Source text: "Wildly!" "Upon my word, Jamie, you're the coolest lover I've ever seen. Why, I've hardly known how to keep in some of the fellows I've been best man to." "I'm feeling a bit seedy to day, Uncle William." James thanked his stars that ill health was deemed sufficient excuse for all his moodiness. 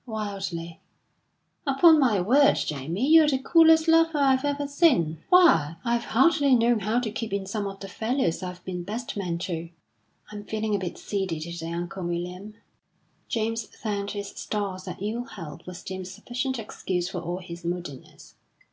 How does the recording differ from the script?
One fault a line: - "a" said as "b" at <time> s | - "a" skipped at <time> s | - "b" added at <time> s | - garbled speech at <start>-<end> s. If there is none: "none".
none